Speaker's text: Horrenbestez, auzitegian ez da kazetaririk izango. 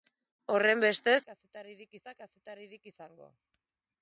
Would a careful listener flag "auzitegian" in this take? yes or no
yes